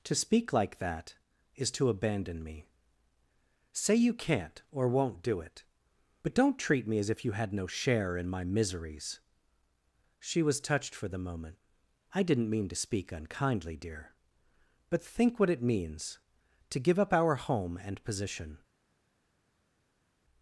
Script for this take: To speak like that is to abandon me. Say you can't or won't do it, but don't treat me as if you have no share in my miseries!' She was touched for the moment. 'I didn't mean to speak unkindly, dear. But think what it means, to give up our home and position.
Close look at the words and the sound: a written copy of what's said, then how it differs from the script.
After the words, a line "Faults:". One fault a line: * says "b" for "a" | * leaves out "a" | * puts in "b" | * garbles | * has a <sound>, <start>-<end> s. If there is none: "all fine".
To speak like that is to abandon me. Say you can't or won't do it, but don't treat me as if you had no share in my miseries!' She was touched for the moment. 'I didn't mean to speak unkindly, dear. But think what it means, to give up our home and position.
Faults:
* says "had" for "have"